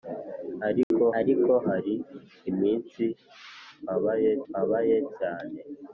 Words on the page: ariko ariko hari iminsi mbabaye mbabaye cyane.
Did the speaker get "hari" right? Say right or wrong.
right